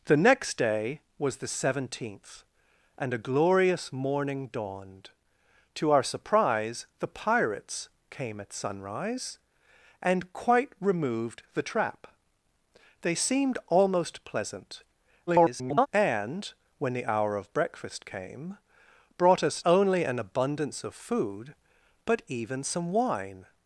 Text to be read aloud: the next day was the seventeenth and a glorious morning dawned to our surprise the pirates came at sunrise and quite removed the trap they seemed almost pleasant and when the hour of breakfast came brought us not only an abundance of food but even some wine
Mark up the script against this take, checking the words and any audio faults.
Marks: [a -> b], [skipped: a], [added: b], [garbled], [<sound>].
the next day was the seventeenth and a glorious morning dawned to our surprise the pirates came at sunrise and quite removed the trap they seemed almost pleasant [garbled] and when the hour of breakfast came brought us [skipped: not] only an abundance of food but even some wine